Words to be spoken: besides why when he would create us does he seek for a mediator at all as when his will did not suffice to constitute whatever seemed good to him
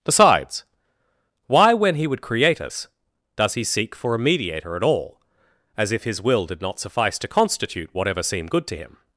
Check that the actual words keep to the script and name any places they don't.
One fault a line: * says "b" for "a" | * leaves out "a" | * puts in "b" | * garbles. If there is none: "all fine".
* says "if" for "when"